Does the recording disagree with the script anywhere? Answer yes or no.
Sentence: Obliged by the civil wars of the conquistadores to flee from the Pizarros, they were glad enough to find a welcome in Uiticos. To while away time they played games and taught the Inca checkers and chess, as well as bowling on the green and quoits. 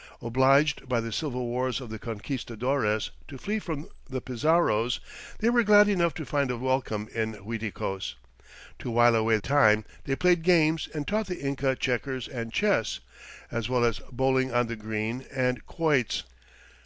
no